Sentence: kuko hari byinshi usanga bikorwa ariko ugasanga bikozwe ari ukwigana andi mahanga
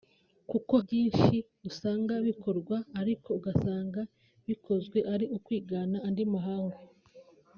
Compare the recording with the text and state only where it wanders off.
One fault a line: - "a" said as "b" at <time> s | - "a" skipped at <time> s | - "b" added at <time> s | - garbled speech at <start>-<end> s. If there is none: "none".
- "hari" skipped at 0.7 s